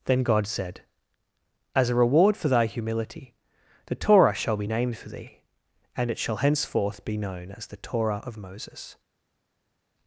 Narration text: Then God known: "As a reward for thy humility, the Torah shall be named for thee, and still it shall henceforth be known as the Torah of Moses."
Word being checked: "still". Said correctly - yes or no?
no